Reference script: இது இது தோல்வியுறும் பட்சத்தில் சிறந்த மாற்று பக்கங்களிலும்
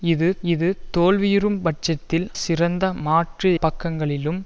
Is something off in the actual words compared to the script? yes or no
no